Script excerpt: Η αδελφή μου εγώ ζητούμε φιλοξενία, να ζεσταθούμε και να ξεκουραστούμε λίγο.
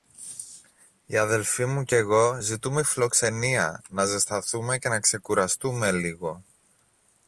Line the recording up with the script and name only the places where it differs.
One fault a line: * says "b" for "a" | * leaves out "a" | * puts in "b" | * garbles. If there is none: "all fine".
* puts in "κι"